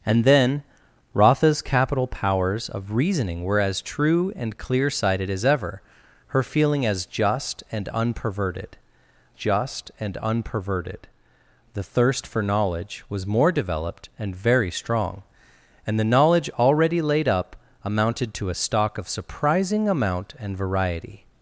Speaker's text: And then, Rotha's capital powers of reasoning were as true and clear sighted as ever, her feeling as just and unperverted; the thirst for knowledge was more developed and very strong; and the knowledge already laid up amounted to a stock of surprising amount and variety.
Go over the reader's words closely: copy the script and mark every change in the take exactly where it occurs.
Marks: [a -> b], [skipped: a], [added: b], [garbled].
And then, Rotha's capital powers of reasoning were as true and clear sighted as ever, her feeling as just and unperverted; [added: just and unperverted] the thirst for knowledge was more developed and very strong; and the knowledge already laid up amounted to a stock of surprising amount and variety.